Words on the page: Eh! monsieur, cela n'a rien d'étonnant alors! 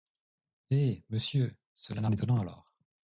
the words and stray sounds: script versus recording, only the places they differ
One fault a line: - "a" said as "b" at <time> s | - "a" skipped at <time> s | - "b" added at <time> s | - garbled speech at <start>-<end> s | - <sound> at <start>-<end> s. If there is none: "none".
- "rien" skipped at 2.1 s